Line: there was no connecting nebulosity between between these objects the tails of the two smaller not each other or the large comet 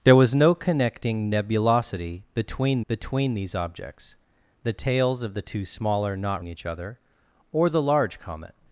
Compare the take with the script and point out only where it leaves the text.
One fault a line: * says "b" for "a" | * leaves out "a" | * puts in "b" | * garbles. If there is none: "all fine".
all fine